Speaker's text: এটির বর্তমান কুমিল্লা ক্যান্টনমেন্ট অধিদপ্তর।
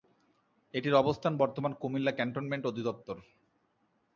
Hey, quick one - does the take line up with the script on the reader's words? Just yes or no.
no